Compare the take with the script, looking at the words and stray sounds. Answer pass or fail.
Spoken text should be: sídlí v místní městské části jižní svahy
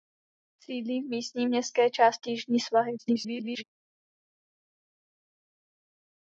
fail